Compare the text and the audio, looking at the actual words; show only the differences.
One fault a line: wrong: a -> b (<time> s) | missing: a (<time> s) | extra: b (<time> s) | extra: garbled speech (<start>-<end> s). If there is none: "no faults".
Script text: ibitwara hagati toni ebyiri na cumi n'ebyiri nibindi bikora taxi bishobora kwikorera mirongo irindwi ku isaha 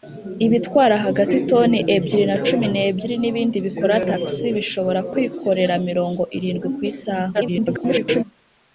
extra: garbled speech (7.3-8.2 s)